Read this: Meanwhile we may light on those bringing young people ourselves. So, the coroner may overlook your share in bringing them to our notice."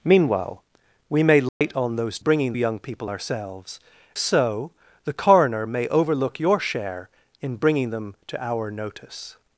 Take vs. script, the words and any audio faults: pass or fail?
fail